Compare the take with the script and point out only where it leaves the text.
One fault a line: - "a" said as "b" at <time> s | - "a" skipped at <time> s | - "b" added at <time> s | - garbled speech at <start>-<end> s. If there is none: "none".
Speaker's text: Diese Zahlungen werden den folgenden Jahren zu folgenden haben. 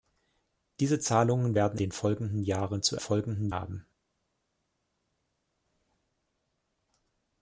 none